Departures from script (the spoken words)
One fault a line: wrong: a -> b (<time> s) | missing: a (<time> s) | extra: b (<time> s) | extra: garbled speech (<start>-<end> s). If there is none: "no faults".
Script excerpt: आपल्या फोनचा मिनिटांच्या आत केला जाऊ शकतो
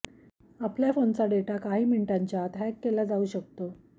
extra: डेटा काही (1.2 s)
extra: हॅक (2.6 s)